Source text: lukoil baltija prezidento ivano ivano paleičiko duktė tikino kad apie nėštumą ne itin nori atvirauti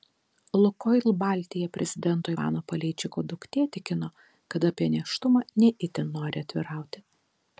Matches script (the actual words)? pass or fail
fail